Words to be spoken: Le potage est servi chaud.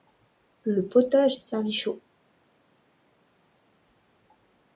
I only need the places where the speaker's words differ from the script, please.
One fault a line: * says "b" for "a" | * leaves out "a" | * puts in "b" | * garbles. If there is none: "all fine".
all fine